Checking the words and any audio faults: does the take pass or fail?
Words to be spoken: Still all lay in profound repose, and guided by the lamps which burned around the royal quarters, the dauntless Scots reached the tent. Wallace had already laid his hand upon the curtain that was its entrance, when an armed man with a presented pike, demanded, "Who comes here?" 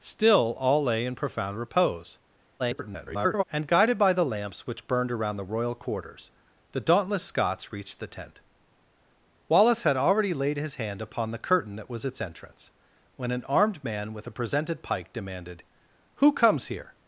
fail